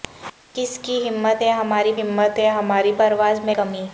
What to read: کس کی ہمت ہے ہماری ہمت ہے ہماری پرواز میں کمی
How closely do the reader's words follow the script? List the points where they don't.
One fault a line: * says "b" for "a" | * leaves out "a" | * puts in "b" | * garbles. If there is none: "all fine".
all fine